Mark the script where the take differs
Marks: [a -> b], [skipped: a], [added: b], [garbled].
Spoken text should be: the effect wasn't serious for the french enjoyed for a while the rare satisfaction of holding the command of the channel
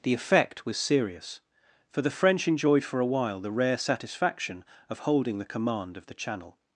the effect [wasn't -> was] serious for the french enjoyed for a while the rare satisfaction of holding the command of the channel